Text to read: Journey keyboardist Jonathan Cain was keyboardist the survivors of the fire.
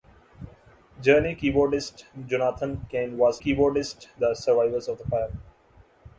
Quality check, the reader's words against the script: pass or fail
pass